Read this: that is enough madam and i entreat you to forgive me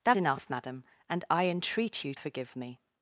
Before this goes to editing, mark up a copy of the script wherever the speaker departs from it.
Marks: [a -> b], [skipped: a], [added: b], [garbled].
that [skipped: is] enough madam and i entreat you [skipped: to] forgive me